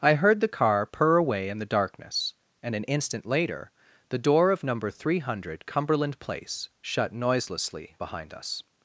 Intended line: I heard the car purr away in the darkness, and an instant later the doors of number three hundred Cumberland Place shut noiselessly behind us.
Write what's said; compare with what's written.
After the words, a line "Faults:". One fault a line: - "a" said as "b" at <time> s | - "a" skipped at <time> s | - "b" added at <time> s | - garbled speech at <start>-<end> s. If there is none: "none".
I heard the car purr away in the darkness, and an instant later the door of number three hundred Cumberland Place shut noiselessly behind us.
Faults:
- "doors" said as "door" at 4.2 s